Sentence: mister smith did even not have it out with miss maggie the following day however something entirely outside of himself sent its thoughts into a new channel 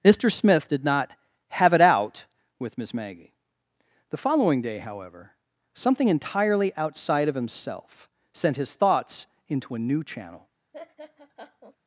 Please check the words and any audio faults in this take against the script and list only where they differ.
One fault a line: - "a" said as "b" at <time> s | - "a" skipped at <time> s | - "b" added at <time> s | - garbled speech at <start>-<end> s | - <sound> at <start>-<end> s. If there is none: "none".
- "even" skipped at 0.8 s
- "its" said as "his" at 8.6 s
- laugh at 10.7-11.8 s